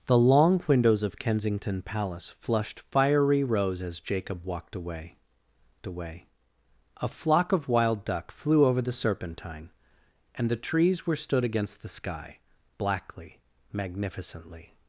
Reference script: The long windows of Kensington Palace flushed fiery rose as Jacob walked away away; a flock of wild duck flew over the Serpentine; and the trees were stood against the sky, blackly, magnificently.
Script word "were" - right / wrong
right